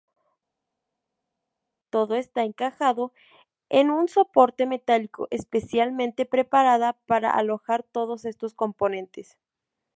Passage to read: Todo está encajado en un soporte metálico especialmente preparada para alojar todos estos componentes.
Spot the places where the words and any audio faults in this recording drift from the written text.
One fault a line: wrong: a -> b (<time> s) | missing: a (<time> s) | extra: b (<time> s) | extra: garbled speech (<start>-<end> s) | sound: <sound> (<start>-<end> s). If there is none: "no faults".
no faults